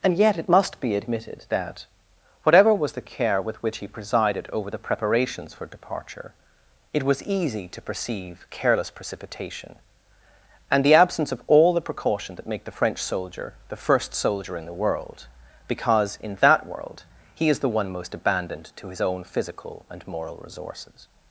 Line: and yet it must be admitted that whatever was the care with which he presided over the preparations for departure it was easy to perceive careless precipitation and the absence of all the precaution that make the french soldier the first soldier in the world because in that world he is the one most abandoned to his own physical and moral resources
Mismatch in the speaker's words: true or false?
false